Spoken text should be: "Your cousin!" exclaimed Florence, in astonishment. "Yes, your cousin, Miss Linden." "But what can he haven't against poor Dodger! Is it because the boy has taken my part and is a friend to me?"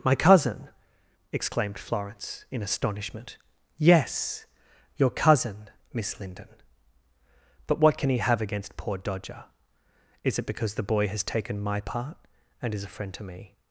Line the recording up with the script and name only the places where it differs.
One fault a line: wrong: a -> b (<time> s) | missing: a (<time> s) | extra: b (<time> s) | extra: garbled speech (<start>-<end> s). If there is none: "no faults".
wrong: Your -> My (0.0 s)
wrong: haven't -> have (8.2 s)